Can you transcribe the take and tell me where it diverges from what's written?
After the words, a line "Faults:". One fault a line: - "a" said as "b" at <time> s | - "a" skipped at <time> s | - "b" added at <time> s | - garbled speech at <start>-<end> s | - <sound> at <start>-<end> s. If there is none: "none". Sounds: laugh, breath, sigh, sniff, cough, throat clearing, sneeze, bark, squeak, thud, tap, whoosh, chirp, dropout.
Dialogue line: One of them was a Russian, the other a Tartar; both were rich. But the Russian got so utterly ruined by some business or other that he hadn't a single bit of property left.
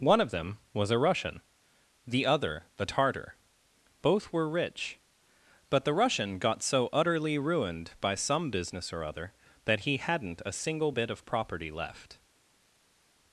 One of them was a Russian, the other the Tartar; both were rich. But the Russian got so utterly ruined by some business or other that he hadn't a single bit of property left.
Faults:
- "a" said as "the" at 2.8 s